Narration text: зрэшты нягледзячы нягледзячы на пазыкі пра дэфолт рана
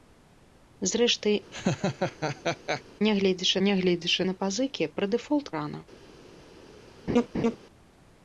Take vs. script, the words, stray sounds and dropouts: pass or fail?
fail